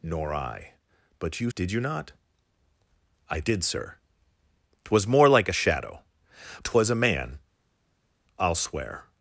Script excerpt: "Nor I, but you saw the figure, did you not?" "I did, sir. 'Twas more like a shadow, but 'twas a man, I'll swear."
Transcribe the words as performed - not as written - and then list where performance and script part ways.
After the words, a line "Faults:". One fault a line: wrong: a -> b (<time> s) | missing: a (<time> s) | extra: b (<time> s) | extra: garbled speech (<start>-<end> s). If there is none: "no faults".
"Nor I, but you did you not?" "I did, sir. 'Twas more like a shadow, 'twas a man, I'll swear."
Faults:
missing: saw the figure (1.5 s)
missing: but (6.0 s)